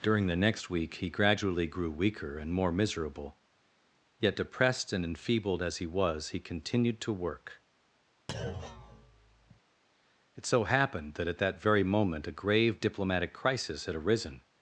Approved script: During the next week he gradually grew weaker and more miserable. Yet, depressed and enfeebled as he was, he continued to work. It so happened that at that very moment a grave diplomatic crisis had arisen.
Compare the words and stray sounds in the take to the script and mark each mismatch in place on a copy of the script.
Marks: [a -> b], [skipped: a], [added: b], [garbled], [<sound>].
During the next week he gradually grew weaker and more miserable. Yet, depressed and enfeebled as he was, he continued to work. [thud] It so happened that at that very moment a grave diplomatic crisis had arisen.